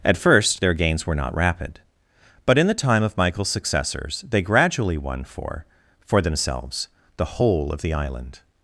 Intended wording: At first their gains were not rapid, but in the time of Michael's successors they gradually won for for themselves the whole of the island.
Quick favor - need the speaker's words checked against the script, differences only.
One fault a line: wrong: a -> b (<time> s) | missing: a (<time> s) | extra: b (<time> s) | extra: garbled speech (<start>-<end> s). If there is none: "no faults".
no faults